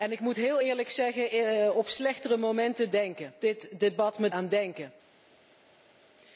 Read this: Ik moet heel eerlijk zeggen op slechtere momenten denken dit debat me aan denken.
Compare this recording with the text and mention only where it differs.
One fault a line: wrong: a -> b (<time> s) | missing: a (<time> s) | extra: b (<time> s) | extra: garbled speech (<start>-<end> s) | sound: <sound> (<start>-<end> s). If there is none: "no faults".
no faults